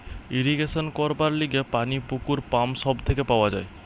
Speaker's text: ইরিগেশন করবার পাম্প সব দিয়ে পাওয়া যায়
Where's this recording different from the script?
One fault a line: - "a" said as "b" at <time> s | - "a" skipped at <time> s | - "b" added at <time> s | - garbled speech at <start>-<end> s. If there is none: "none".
- "লিগে পানি পুকুর" added at 1.3 s
- "দিয়ে" said as "থেকে" at 3.1 s